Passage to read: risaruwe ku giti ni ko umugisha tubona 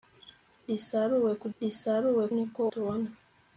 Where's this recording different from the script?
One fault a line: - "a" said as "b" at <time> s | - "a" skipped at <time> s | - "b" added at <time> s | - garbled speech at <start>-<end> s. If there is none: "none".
- "giti" said as "risaruwe" at 1.6 s
- "umugisha" skipped at 2.6 s